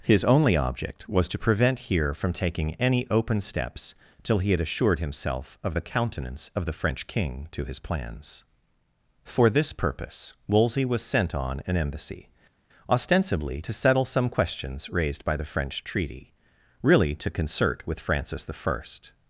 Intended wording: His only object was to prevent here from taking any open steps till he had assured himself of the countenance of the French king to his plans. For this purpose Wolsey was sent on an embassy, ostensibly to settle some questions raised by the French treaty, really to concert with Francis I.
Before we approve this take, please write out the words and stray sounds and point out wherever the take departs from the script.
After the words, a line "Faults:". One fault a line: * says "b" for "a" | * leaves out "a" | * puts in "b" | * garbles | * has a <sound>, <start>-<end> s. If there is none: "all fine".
His only object was to prevent here from taking any open steps till he had assured himself of the countenance of the French king to his plans. For this purpose Wolsey was sent on an embassy, ostensibly to settle some questions raised by the French treaty, really to concert with Francis I.
Faults:
all fine